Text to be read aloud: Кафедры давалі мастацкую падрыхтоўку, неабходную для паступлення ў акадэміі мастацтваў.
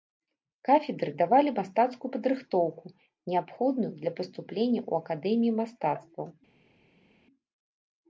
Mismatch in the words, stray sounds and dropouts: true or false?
false